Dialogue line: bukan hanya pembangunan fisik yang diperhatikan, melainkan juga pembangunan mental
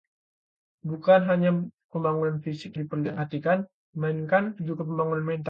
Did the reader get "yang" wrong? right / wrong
wrong